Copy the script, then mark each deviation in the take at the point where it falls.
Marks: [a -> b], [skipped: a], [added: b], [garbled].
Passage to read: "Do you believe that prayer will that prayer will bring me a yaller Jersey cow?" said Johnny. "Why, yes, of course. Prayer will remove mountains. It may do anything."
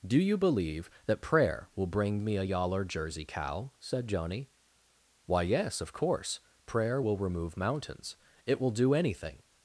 "Do you believe that prayer will [skipped: that prayer will] bring me a yaller Jersey cow?" said Johnny. "Why, yes, of course. Prayer will remove mountains. It [may -> will] do anything."